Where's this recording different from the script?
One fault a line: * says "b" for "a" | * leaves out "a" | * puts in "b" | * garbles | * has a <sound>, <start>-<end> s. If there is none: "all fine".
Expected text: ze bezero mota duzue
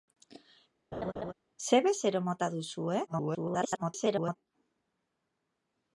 * has a laugh, 0.9-1.3 s
* garbles